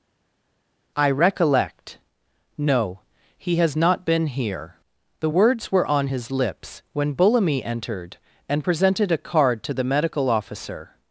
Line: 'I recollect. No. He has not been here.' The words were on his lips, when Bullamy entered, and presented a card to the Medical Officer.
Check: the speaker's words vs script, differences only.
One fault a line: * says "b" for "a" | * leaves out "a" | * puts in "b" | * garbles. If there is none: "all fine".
all fine